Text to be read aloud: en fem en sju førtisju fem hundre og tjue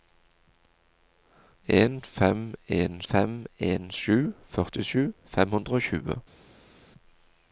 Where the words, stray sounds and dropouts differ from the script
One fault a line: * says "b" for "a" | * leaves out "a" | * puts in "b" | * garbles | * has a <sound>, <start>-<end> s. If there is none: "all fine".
* puts in "fem en"